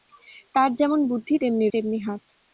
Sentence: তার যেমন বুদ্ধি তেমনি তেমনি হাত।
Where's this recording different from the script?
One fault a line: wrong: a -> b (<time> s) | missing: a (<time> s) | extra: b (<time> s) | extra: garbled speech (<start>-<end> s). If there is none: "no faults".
no faults